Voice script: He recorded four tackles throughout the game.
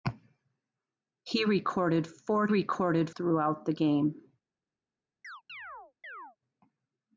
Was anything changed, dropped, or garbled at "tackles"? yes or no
yes